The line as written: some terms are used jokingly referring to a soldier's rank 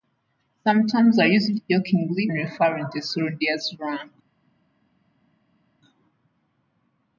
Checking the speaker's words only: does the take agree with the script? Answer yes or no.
yes